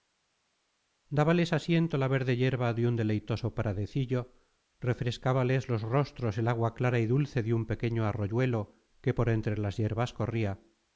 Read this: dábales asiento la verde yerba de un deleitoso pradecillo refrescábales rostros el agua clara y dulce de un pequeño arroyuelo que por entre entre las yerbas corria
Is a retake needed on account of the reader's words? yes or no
yes